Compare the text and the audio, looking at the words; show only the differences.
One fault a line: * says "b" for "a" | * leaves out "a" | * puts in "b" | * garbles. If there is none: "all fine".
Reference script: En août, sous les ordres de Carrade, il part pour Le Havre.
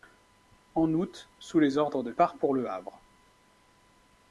* leaves out "Carrade il"